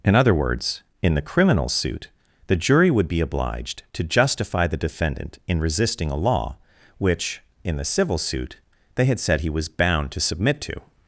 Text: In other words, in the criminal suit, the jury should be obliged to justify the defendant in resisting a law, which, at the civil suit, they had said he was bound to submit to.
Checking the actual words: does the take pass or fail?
fail